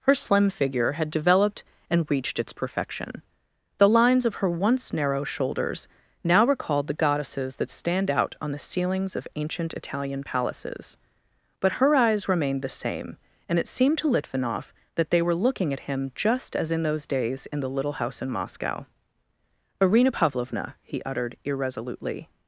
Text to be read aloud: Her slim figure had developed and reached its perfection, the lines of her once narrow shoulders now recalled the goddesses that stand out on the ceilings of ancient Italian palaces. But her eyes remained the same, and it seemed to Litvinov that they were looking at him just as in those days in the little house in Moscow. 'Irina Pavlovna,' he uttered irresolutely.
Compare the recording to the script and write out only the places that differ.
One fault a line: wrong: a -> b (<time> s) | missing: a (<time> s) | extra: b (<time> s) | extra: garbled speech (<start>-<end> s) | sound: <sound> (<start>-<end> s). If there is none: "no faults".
no faults